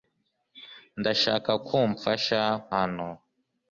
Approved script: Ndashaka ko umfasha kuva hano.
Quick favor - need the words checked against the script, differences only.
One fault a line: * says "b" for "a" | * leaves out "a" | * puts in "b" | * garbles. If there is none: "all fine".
* leaves out "kuva"